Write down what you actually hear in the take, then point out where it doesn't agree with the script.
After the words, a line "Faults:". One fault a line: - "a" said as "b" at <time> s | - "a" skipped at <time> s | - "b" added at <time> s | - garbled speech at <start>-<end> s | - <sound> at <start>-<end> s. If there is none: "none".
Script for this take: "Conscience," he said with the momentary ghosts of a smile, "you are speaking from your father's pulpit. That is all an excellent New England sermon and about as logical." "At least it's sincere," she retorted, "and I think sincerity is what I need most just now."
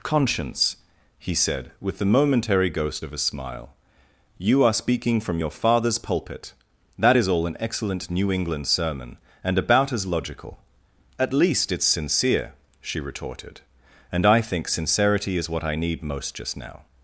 "Conscience," he said with the momentary ghost of a smile, "you are speaking from your father's pulpit. That is all an excellent New England sermon and about as logical." "At least it's sincere," she retorted, "and I think sincerity is what I need most just now."
Faults:
- "ghosts" said as "ghost" at 2.7 s